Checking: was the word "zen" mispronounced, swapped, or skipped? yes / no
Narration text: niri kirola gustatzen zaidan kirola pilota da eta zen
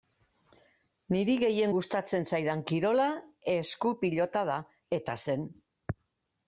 no